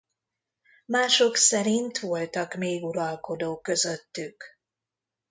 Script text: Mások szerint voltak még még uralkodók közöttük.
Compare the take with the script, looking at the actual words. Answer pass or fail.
fail